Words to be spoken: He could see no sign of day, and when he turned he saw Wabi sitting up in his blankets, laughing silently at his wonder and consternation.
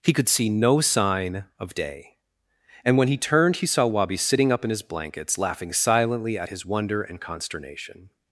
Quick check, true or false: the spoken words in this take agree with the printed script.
true